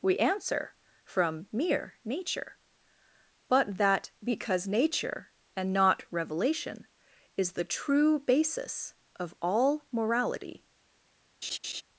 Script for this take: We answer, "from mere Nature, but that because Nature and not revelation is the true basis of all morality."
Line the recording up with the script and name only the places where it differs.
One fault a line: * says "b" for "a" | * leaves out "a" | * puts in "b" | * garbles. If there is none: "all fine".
all fine